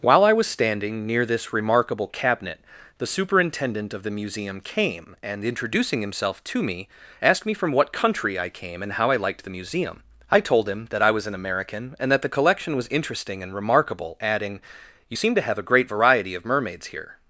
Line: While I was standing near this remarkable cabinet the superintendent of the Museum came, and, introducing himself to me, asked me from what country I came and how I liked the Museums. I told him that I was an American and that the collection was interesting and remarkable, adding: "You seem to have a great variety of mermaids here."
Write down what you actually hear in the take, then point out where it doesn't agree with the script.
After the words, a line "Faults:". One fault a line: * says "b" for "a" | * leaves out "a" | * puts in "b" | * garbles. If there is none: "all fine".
While I was standing near this remarkable cabinet the superintendent of the Museum came, and, introducing himself to me, asked me from what country I came and how I liked the Museum. I told him that I was an American and that the collection was interesting and remarkable, adding: "You seem to have a great variety of mermaids here."
Faults:
* says "Museum" for "Museums"